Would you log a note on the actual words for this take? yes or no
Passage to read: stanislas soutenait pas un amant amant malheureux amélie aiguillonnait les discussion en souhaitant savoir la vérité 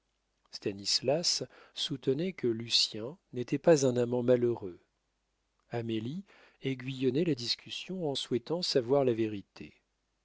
yes